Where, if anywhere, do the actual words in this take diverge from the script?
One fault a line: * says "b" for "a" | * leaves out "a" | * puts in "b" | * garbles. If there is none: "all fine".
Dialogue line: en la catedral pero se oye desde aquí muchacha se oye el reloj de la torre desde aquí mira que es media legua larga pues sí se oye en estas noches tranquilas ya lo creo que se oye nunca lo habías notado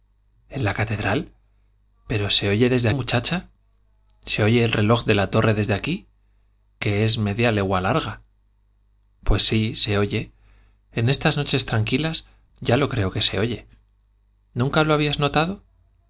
* leaves out "aquí"
* leaves out "mira"